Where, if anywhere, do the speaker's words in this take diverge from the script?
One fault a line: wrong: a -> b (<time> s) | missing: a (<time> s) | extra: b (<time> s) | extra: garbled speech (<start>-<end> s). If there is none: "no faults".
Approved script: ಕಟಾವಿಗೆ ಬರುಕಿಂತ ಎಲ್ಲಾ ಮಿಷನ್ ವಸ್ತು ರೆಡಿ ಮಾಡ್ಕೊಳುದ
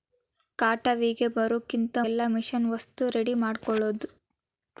no faults